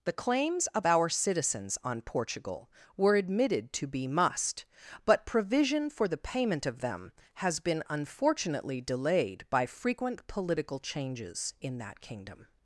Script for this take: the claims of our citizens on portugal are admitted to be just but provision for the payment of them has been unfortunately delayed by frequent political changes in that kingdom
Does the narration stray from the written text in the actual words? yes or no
yes